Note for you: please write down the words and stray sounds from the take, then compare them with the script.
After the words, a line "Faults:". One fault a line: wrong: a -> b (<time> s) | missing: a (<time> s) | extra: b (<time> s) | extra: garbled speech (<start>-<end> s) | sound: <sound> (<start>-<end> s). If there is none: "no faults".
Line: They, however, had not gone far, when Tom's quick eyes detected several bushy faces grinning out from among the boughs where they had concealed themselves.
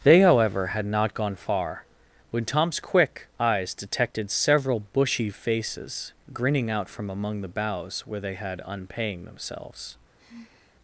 They, however, had not gone far, when Tom's quick eyes detected several bushy faces grinning out from among the boughs where they had unpaying themselves.
Faults:
wrong: concealed -> unpaying (8.7 s)
sound: sigh (10.2-10.8 s)